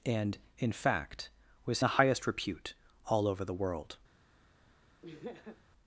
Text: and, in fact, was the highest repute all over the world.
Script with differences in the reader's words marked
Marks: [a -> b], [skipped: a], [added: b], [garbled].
and, in fact, was the highest repute all over the world.